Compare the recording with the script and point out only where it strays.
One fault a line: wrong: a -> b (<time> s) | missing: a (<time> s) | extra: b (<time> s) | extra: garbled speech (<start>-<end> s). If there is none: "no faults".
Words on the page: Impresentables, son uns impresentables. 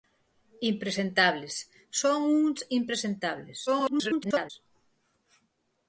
extra: garbled speech (3.7-4.5 s)